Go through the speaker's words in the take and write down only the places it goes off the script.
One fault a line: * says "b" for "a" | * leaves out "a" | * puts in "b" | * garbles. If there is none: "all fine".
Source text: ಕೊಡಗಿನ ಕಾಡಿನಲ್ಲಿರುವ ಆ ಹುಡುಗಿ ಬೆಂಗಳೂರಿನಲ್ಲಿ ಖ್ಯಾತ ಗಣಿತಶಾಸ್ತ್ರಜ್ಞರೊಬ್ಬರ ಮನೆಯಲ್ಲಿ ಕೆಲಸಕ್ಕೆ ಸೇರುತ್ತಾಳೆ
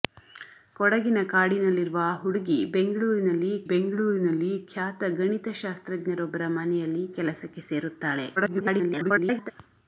* puts in "ಬೆಂಗಳೂರಿನಲ್ಲಿ"
* garbles